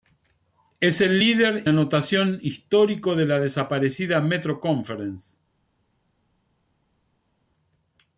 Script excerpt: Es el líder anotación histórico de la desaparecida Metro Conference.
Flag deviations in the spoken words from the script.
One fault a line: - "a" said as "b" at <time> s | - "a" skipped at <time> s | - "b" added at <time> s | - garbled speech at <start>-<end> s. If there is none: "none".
none